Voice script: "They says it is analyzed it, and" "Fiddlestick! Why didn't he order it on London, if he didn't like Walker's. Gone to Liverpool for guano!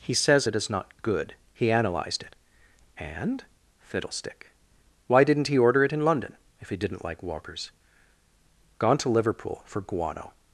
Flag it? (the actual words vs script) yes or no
yes